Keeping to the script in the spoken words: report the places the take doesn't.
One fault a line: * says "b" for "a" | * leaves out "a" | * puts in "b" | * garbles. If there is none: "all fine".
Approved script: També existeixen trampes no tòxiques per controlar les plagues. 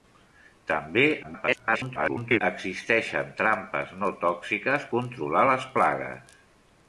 * garbles
* leaves out "per"